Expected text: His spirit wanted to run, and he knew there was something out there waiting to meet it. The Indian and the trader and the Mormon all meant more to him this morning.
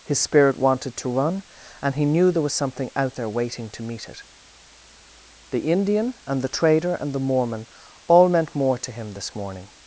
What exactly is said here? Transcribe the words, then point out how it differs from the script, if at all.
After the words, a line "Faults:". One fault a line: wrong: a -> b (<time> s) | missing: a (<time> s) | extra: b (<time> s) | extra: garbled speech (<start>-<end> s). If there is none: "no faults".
His spirit wanted to run, and he knew there was something out there waiting to meet it. The Indian and the trader and the Mormon all meant more to him this morning.
Faults:
no faults